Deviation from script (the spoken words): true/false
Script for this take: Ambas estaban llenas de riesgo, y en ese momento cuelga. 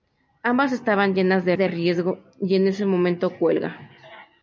true